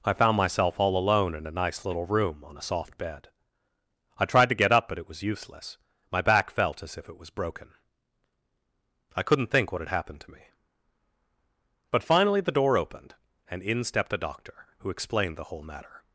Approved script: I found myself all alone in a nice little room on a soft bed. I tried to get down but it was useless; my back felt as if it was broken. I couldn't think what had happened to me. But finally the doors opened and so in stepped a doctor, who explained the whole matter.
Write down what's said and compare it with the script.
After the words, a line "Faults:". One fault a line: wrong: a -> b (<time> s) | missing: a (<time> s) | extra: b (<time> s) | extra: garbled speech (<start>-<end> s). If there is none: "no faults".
I found myself all alone in a nice little room on a soft bed. I tried to get up but it was useless; my back felt as if it was broken. I couldn't think what had happened to me. But finally the door opened and in stepped a doctor, who explained the whole matter.
Faults:
wrong: down -> up (4.7 s)
wrong: doors -> door (12.5 s)
missing: so (13.6 s)